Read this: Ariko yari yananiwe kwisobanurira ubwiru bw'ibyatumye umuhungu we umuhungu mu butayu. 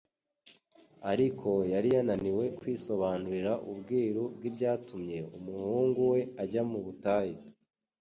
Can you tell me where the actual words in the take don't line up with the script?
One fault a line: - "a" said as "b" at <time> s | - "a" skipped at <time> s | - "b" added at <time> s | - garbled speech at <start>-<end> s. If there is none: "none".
- "umuhungu" said as "ajya" at 6.4 s